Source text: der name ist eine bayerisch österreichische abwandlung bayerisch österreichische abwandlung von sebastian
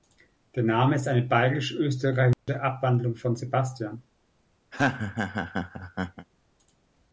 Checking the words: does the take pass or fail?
fail